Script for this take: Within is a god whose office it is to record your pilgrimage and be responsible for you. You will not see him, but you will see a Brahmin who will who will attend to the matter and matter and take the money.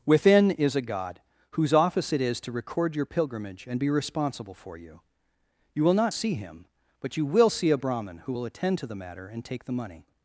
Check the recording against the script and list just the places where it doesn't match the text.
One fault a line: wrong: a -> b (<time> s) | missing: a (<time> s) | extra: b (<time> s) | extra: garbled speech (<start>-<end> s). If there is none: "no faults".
missing: who will (8.5 s)
missing: matter and (9.4 s)